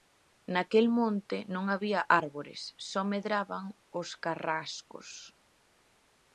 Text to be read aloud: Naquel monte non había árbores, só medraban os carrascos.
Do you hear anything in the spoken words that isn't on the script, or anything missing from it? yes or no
no